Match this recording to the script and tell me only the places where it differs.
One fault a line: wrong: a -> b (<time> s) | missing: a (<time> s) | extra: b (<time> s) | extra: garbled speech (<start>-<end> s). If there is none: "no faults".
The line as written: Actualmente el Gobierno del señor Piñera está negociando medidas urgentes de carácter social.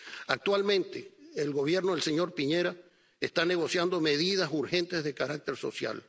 no faults